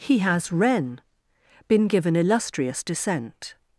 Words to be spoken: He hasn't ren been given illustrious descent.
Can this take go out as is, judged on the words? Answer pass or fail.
fail